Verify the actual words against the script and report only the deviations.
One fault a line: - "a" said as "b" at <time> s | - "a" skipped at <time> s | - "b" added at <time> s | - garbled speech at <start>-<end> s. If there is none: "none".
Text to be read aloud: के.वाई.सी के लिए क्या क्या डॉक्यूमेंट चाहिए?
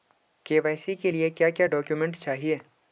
none